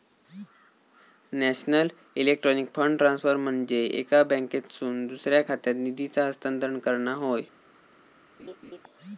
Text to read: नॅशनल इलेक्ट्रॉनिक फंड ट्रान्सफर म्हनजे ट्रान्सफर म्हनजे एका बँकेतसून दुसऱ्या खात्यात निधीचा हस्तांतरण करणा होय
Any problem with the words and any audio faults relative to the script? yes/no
yes